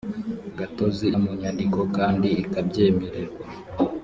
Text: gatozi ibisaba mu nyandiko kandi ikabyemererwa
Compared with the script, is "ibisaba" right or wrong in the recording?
wrong